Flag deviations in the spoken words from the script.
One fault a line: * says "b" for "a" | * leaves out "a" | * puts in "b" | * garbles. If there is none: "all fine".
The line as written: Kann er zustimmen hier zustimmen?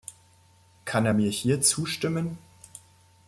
* says "mir" for "zustimmen"